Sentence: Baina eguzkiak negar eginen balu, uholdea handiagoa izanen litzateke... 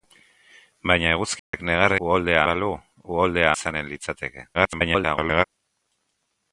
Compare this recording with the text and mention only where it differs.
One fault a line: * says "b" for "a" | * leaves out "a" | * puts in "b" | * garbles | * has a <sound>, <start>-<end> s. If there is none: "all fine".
* has a dropout, 1.4-1.5 s
* says "uholdea" for "eginen"
* leaves out "handiagoa"
* garbles